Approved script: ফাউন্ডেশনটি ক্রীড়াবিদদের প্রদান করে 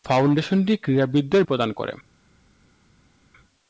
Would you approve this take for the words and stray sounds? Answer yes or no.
yes